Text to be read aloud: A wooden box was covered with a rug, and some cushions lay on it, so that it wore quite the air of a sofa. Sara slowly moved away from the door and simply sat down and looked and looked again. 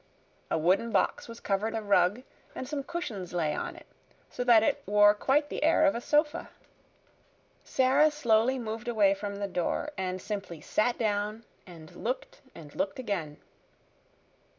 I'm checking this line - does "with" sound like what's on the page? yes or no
no